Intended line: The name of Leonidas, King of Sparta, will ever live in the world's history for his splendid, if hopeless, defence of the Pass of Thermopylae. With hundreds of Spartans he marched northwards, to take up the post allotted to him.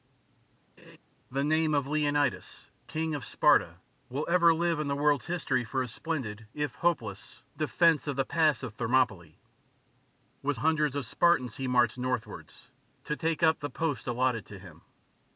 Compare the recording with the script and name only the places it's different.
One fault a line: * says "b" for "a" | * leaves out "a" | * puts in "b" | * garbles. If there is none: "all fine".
all fine